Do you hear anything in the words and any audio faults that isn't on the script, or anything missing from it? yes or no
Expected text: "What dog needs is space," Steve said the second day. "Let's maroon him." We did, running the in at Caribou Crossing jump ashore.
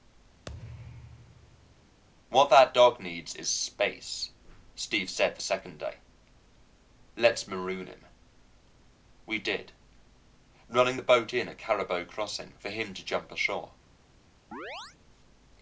yes